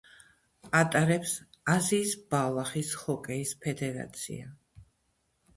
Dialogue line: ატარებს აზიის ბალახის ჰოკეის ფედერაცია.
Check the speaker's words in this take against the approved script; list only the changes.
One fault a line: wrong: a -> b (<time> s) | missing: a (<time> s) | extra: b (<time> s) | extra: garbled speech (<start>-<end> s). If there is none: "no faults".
no faults